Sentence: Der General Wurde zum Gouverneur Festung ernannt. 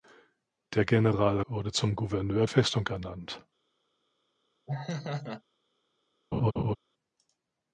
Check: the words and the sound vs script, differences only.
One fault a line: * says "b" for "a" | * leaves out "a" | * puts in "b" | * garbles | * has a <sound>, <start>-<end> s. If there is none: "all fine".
* has a laugh, 4.7-5.4 s
* has a laugh, 6.3-6.8 s